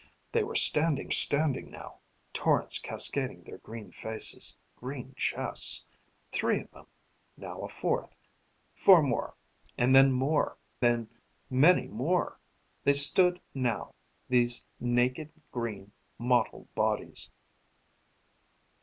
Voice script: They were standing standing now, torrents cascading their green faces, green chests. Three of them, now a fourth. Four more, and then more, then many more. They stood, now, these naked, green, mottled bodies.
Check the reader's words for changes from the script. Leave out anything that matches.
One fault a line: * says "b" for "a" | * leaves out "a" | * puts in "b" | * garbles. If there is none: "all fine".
all fine